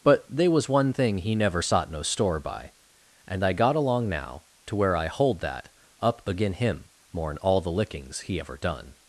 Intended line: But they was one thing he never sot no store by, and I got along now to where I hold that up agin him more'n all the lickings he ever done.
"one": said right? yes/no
yes